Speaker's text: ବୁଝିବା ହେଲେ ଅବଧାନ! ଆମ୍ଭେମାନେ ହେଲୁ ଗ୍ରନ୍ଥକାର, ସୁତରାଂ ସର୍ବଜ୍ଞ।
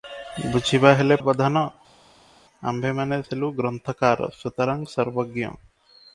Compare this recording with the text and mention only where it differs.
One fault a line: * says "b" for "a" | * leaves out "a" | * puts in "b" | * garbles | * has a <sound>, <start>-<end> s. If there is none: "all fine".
all fine